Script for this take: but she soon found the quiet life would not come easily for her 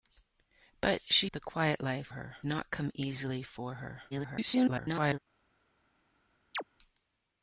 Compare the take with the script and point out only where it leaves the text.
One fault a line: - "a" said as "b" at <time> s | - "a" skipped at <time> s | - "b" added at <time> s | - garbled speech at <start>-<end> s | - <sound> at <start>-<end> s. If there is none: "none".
- "soon found" skipped at 1.3 s
- "would" said as "her" at 2.1 s
- garbled speech at 4.1-5.2 s
- chirp at 6.5-6.6 s